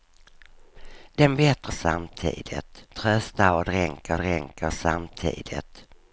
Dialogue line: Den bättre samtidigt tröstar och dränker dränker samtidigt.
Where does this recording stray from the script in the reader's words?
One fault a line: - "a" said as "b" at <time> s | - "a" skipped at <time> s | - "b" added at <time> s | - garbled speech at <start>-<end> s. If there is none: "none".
none